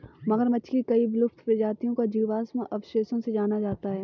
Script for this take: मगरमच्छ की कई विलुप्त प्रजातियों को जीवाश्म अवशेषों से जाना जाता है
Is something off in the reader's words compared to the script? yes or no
no